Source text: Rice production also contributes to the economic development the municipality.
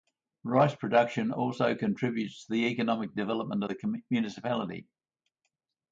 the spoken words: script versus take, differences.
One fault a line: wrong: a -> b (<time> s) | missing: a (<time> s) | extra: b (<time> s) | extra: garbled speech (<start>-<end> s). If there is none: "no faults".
no faults